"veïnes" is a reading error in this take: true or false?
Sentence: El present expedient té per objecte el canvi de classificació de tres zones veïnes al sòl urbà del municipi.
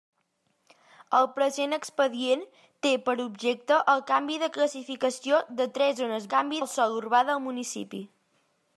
true